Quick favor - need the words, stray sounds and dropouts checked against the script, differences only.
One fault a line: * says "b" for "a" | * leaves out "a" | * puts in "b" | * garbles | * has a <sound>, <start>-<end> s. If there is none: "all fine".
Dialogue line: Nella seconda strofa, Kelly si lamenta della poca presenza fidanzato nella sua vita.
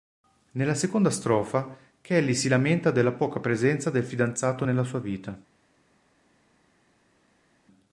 * puts in "del"